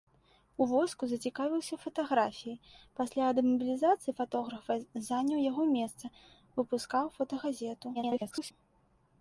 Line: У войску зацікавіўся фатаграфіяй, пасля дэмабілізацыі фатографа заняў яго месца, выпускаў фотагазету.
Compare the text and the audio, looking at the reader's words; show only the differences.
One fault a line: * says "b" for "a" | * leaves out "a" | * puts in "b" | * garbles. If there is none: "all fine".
* garbles